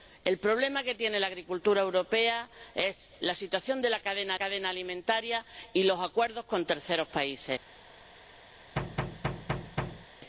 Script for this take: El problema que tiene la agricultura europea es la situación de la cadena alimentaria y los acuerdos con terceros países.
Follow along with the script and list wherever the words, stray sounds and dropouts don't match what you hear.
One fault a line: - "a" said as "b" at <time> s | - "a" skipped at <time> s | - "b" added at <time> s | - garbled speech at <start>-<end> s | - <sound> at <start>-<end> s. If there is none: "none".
- "cadena" added at 4.4 s
- thud at 8.8-10.1 s